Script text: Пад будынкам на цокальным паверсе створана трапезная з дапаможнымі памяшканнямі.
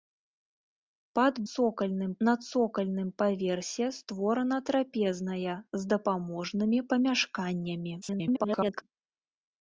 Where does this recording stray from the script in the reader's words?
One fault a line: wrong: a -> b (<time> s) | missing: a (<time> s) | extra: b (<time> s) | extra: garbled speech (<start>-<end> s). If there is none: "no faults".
wrong: будынкам -> цокальным (1.5 s)
extra: garbled speech (8.0-8.8 s)